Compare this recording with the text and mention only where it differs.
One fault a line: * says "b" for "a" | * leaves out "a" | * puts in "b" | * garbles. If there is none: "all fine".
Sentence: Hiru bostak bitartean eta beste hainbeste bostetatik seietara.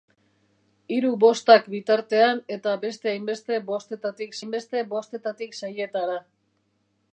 * puts in "hainbeste bostetatik"